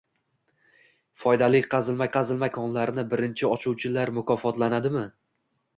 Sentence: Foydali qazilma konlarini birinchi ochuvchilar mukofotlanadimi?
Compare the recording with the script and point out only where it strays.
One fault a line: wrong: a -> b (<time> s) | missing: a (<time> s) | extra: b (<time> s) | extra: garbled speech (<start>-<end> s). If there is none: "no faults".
extra: qazilma (2.2 s)